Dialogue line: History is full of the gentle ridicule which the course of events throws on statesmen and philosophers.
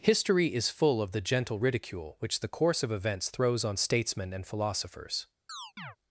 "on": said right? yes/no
yes